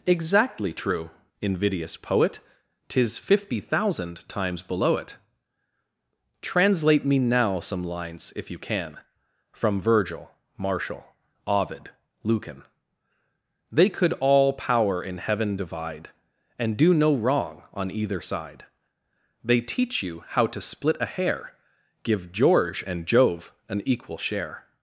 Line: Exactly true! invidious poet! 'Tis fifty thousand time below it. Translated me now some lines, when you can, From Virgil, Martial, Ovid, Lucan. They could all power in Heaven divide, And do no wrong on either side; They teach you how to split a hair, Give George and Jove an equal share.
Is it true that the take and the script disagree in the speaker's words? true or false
true